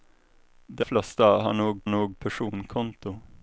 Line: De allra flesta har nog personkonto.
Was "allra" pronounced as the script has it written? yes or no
no